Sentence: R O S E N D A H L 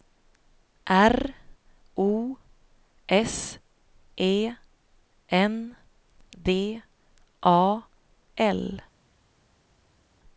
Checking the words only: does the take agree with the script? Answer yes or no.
no